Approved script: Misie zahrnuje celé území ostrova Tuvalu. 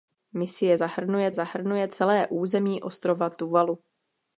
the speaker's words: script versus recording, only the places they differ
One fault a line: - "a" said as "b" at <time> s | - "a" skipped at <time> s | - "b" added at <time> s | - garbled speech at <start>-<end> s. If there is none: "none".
- "zahrnuje" added at 1.3 s